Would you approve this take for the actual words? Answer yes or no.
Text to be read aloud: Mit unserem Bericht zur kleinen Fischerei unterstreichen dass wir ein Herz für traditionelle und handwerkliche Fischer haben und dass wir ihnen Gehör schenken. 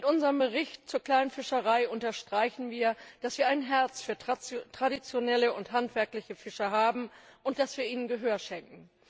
no